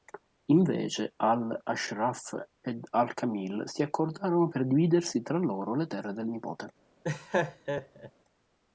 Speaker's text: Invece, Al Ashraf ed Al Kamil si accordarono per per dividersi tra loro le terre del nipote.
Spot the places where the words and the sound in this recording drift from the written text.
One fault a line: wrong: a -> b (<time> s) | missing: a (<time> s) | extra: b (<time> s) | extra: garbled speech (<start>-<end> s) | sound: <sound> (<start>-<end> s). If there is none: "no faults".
missing: per (4.6 s)
sound: laugh (7.0-8.1 s)